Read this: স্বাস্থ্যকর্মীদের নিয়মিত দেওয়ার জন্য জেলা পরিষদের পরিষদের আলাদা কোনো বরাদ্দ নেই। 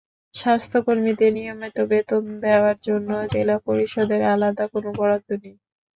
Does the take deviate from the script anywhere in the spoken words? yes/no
yes